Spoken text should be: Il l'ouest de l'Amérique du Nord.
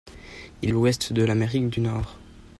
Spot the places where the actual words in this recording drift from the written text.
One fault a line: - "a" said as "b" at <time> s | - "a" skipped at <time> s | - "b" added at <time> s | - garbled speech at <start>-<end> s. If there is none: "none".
none